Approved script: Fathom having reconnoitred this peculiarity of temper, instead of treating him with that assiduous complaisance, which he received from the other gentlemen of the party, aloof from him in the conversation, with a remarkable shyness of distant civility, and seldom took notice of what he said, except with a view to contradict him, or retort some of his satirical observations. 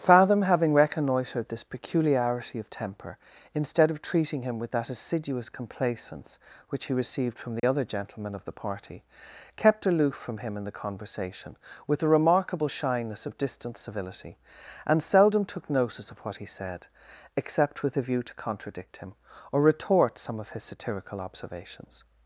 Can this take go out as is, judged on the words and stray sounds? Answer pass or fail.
fail